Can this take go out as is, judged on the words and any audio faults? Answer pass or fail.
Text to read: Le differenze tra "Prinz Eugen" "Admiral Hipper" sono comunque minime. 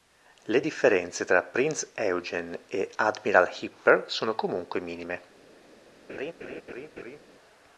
fail